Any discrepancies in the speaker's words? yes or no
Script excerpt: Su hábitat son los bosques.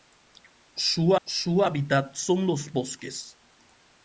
yes